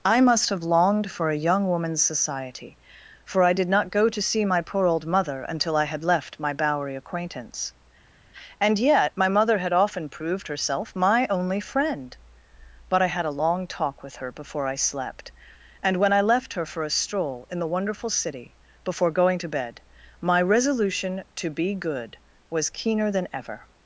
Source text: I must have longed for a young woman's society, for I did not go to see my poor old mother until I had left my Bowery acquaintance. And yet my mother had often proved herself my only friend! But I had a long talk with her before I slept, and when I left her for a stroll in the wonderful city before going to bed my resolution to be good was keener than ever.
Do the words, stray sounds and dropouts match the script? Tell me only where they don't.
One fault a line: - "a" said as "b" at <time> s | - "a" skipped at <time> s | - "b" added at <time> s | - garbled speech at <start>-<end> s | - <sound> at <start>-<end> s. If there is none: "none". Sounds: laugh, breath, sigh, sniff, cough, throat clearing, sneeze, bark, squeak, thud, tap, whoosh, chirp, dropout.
none